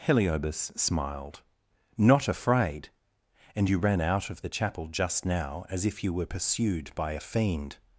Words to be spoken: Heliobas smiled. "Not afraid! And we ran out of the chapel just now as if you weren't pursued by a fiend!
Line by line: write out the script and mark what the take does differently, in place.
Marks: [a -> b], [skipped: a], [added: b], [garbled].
Heliobas smiled. "Not afraid! And [we -> you] ran out of the chapel just now as if you [weren't -> were] pursued by a fiend!